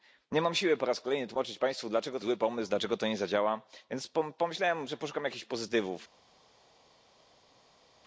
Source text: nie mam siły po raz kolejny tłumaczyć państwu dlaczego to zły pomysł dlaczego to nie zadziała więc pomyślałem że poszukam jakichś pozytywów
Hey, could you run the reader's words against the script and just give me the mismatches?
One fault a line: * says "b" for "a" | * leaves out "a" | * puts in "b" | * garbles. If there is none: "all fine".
all fine